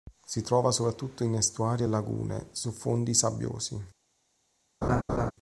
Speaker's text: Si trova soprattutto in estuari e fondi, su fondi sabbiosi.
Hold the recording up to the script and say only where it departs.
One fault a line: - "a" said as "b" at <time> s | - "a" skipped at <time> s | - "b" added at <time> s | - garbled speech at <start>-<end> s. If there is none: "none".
- "fondi" said as "lagune" at 1.8 s